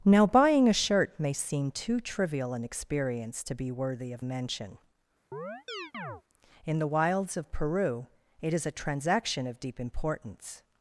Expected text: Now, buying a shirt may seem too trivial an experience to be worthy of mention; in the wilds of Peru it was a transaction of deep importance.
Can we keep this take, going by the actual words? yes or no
no